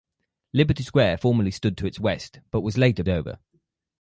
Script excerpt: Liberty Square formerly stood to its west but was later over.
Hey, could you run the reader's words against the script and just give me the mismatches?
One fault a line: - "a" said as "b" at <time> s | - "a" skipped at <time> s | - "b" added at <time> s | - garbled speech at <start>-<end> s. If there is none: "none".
none